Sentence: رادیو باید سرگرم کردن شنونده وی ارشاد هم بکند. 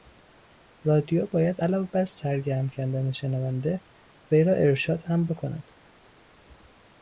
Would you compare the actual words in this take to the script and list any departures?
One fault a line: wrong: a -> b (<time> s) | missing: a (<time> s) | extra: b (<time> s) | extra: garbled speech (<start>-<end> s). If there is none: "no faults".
extra: علاوه بر (1.6 s)
extra: را (4.4 s)